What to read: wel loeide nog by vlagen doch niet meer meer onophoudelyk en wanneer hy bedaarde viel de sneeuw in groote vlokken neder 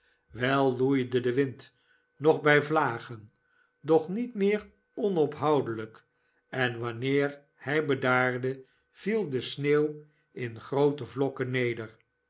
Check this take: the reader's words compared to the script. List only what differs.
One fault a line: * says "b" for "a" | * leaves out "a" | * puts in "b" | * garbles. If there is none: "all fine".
* puts in "de wind"
* leaves out "meer"